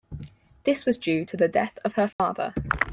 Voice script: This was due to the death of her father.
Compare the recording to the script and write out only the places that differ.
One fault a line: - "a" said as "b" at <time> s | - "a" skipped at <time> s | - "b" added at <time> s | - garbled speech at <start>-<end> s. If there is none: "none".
none